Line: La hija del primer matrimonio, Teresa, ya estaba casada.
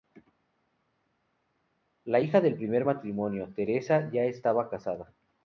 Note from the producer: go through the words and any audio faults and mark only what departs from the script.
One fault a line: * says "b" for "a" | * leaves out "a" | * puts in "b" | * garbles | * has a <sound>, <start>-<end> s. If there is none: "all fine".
all fine